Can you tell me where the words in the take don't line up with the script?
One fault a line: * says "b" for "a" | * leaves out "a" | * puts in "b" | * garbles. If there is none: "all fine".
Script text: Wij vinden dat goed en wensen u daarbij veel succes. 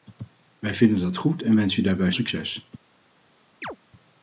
* leaves out "veel"